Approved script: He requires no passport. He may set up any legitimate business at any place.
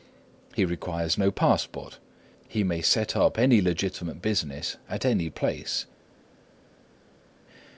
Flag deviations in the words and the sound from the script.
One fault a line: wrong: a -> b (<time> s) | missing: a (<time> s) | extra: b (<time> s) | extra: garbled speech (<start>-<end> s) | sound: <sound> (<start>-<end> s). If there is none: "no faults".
no faults